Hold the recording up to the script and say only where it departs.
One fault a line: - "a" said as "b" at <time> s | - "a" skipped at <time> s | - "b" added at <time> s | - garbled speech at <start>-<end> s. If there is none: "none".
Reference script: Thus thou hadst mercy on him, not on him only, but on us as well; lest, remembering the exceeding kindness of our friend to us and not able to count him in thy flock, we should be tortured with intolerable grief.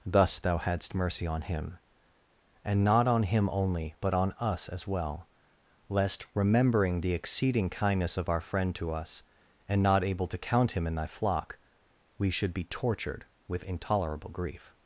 - "and" added at 2.6 s